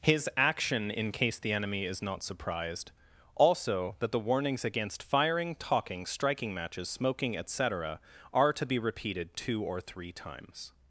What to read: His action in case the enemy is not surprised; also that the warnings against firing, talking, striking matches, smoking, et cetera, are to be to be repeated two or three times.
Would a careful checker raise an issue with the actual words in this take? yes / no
yes